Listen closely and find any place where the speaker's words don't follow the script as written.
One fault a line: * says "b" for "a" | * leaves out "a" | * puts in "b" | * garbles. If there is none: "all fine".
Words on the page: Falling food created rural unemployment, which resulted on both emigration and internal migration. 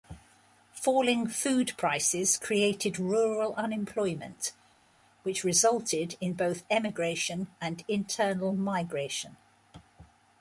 * puts in "prices"
* says "in" for "on"